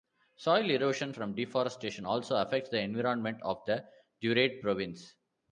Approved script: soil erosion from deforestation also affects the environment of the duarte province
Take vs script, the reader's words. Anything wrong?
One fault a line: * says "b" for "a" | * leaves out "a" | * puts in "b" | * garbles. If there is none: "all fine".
all fine